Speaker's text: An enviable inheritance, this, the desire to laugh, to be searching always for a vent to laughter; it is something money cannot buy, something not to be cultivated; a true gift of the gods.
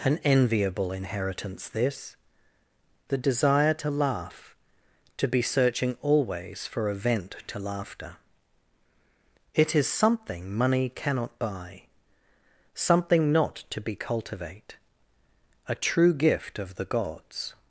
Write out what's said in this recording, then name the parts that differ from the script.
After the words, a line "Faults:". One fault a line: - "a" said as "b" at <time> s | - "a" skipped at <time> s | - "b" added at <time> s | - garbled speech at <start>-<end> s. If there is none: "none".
An enviable inheritance, this, the desire to laugh, to be searching always for a vent to laughter; it is something money cannot buy, something not to be cultivate; a true gift of the gods.
Faults:
- "cultivated" said as "cultivate" at 13.9 s